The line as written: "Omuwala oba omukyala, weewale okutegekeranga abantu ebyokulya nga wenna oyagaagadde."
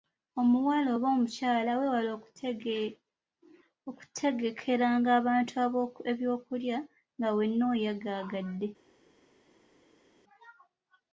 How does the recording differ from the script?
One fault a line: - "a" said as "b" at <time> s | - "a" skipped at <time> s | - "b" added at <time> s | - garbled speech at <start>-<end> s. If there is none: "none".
none